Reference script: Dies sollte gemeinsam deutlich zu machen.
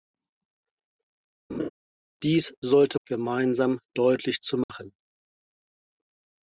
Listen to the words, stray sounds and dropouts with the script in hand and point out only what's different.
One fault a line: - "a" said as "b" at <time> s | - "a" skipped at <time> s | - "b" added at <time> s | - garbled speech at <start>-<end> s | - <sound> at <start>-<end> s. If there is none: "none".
- laugh at 1.5-1.7 s
- dropout at 4.6-4.7 s